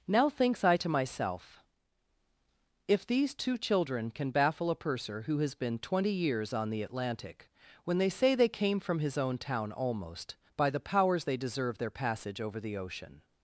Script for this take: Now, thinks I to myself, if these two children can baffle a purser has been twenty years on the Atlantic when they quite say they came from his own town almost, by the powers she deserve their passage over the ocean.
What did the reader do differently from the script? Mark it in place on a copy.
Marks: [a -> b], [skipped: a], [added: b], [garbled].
Now, thinks I to myself, if these two children can baffle a purser [added: who] has been twenty years on the Atlantic when they [skipped: quite] say they came from his own town almost, by the powers [she -> they] deserve their passage over the ocean.